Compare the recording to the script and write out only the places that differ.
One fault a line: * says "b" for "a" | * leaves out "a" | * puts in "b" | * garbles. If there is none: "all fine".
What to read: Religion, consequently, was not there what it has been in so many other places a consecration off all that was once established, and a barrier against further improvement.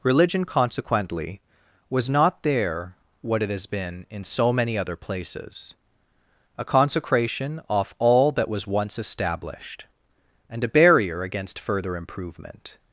all fine